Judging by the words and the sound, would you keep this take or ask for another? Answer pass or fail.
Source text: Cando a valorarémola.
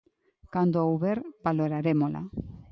fail